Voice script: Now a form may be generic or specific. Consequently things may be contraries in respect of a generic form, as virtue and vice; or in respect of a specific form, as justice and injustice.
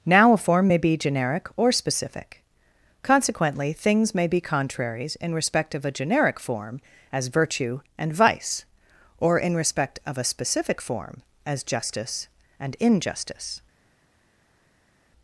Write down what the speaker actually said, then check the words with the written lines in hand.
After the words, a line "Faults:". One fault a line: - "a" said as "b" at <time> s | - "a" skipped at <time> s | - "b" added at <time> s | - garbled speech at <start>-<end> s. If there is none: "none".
Now a form may be generic or specific. Consequently things may be contraries in respect of a generic form, as virtue and vice; or in respect of a specific form, as justice and injustice.
Faults:
none